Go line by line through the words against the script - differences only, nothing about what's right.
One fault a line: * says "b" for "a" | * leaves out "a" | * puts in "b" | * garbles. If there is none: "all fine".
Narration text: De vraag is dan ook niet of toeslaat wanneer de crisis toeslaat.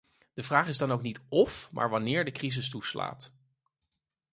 * says "maar" for "toeslaat"